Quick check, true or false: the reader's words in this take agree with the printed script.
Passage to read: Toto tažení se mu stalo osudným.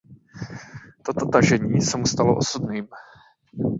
true